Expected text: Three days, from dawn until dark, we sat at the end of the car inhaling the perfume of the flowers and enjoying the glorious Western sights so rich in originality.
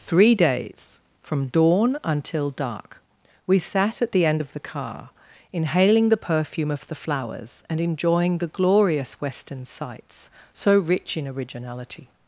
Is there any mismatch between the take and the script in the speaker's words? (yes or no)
no